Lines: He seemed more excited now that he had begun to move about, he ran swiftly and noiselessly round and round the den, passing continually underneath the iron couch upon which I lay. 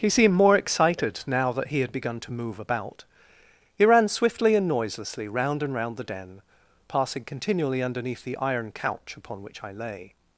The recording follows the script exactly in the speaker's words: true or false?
true